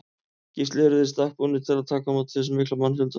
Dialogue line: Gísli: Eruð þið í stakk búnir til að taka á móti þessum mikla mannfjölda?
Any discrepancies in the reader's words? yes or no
no